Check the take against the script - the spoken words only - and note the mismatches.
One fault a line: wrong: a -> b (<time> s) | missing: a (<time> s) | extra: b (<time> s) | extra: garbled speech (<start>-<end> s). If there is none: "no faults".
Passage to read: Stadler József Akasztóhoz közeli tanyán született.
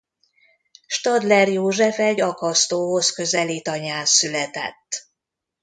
extra: egy (2.0 s)